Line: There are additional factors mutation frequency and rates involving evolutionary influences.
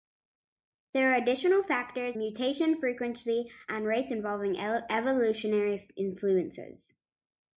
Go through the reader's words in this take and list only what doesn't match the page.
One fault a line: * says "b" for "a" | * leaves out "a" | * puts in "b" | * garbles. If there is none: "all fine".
all fine